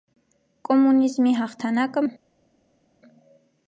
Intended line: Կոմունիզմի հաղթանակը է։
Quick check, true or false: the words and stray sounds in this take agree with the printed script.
true